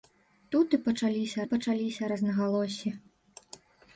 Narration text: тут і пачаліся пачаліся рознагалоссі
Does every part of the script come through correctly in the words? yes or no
yes